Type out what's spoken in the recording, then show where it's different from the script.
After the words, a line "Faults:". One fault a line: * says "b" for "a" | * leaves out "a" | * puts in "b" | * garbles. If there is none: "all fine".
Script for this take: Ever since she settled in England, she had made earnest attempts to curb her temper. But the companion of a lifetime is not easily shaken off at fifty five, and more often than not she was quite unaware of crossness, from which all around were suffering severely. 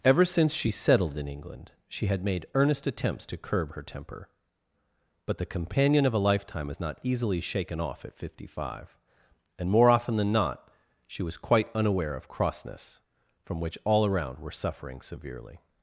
Ever since she settled in England, she had made earnest attempts to curb her temper. But the companion of a lifetime is not easily shaken off at fifty five, and more often than not she was quite unaware of crossness, from which all around were suffering severely.
Faults:
all fine